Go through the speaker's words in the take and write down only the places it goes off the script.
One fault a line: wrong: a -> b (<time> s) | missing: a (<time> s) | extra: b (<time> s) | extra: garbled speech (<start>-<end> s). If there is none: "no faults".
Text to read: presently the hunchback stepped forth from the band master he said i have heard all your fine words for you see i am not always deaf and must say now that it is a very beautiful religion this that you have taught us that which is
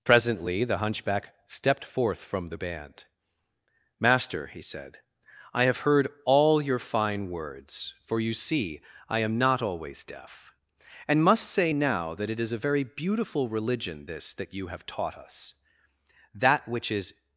no faults